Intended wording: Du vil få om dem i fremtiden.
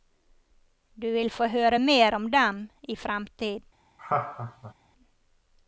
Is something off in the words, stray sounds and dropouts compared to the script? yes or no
yes